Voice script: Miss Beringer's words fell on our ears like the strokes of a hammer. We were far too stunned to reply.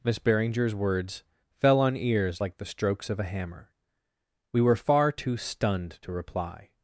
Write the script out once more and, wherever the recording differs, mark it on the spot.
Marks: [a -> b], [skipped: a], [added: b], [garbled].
Miss Beringer's words fell on [skipped: our] ears like the strokes of a hammer. We were far too stunned to reply.